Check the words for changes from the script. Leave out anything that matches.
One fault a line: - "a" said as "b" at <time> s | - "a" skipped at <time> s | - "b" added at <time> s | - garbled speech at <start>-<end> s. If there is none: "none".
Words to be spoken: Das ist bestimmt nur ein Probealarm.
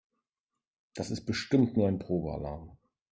none